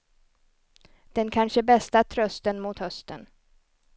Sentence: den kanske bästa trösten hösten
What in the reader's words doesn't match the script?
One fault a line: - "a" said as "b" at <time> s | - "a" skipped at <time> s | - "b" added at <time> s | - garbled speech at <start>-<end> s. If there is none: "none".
- "mot" added at 2.6 s